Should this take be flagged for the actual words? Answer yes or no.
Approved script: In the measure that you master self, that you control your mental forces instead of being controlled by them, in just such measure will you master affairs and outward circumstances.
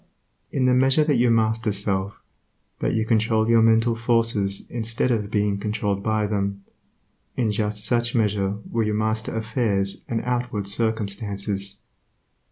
no